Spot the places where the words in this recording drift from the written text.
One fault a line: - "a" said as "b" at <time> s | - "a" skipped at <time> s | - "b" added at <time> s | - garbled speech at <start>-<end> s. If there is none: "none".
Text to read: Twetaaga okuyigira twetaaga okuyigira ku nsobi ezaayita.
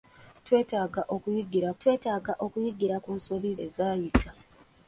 none